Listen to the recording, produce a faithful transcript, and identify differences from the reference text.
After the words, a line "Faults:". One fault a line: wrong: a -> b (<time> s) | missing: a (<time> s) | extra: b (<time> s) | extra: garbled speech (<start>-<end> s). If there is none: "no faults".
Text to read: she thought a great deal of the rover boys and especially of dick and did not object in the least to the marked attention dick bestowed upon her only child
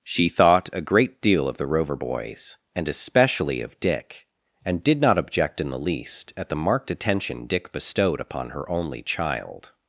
she thought a great deal of the rover boys and especially of dick and did not object in the least at the marked attention dick bestowed upon her only child
Faults:
wrong: to -> at (6.4 s)